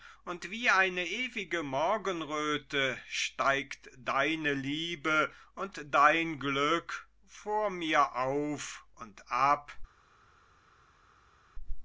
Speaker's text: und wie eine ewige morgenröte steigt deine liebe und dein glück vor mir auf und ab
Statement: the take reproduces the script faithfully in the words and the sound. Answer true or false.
true